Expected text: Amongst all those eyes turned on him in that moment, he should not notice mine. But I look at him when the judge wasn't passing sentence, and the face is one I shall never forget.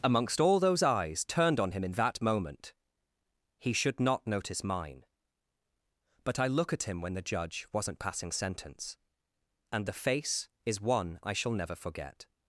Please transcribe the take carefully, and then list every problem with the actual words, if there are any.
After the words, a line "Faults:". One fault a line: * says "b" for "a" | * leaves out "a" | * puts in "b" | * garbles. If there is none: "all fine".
Amongst all those eyes turned on him in that moment, he should not notice mine. But I look at him when the judge wasn't passing sentence, and the face is one I shall never forget.
Faults:
all fine